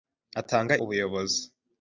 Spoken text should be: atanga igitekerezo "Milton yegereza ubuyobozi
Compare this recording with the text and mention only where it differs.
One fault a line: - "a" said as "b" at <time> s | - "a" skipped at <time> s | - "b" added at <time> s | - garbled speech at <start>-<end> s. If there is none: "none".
- "igitekerezo Milton yegereza" skipped at 0.7 s